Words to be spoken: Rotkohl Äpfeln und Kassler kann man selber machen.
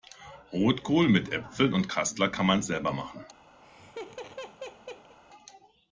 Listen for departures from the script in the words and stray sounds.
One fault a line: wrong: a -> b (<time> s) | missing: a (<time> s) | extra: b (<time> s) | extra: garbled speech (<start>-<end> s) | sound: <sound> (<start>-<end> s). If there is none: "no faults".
extra: mit (1.1 s)
sound: laugh (3.6-5.2 s)